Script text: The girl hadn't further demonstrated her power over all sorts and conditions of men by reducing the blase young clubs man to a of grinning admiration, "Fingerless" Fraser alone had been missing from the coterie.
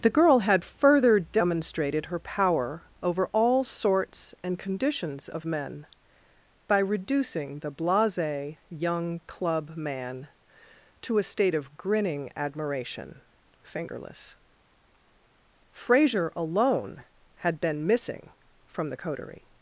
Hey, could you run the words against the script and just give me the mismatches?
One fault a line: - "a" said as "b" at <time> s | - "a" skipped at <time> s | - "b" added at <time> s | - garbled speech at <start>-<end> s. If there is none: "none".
- "hadn't" said as "had" at 0.4 s
- "clubs" said as "club" at 9.3 s
- "state" added at 11.2 s